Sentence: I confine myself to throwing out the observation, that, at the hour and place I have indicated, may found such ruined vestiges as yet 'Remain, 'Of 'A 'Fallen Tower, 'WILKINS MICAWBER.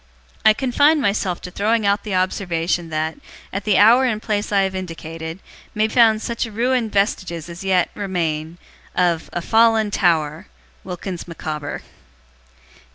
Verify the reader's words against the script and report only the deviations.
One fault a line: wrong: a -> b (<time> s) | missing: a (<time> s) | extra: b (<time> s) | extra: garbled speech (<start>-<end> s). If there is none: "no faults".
no faults